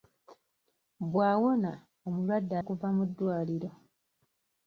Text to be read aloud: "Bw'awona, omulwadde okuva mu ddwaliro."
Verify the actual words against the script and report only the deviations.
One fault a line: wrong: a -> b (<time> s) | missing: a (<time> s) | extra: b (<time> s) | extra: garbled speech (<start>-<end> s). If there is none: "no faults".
no faults